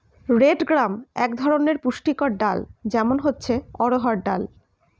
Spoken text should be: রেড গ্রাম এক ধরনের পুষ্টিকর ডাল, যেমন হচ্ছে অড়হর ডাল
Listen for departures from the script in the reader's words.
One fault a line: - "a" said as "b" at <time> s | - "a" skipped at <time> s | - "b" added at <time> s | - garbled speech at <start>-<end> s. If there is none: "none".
none